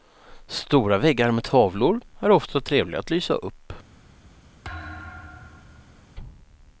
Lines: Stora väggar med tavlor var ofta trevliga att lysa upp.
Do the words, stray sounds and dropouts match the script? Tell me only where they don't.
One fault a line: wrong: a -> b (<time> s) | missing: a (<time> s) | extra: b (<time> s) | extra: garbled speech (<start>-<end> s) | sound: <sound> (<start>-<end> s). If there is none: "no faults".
wrong: var -> är (2.2 s)
sound: thud (4.6-6.2 s)